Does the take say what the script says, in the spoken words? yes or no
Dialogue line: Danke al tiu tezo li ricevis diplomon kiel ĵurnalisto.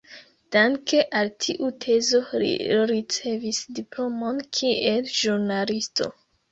yes